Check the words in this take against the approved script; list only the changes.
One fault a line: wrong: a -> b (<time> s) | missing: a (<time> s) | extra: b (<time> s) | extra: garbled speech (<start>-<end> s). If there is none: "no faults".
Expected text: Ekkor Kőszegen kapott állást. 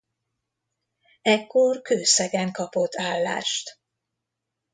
no faults